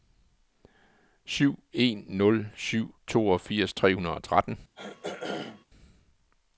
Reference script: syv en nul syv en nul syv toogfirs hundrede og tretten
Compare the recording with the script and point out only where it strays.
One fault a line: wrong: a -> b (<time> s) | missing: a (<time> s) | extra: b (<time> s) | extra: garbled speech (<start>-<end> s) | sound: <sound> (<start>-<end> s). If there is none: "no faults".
wrong: en nul syv toogfirs -> toogfirs tre (3.1 s)
sound: throat clearing (4.8-5.7 s)